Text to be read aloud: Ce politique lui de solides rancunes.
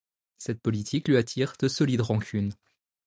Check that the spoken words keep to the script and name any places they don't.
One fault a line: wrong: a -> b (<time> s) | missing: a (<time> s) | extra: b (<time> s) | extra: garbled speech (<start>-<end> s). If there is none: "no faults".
wrong: Ce -> Cette (0.4 s)
extra: attire (1.2 s)